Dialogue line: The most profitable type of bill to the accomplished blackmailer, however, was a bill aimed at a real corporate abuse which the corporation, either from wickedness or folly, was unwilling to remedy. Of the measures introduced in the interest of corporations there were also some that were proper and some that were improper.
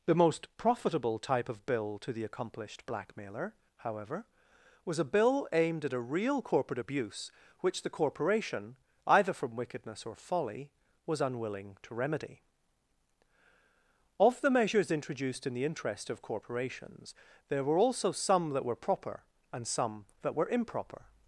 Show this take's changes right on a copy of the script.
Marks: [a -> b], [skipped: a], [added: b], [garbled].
The most profitable type of bill to the accomplished blackmailer, however, was a bill aimed at a real corporate abuse which the corporation, either from wickedness or folly, was unwilling to remedy. Of the measures introduced in the interest of corporations there were also some that were proper and some that were improper.